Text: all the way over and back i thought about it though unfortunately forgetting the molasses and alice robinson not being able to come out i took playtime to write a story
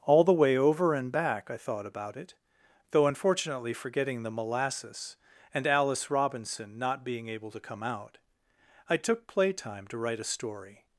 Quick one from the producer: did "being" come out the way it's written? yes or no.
yes